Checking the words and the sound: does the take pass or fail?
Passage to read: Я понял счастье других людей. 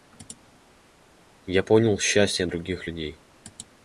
pass